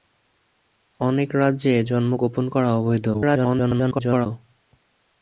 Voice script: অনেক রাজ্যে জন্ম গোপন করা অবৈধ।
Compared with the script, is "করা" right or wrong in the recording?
right